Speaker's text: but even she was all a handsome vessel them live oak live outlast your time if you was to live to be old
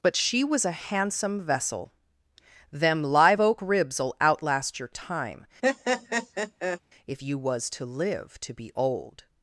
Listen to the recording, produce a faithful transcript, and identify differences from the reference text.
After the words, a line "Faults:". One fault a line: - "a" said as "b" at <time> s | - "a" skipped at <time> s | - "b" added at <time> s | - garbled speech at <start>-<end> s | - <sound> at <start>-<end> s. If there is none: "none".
but she was a handsome vessel them live oak ribs'll outlast your time if you was to live to be old
Faults:
- "even" skipped at 0.1 s
- "all" skipped at 0.7 s
- "live" said as "ribs'll" at 3.6 s
- laugh at 5.6-6.8 s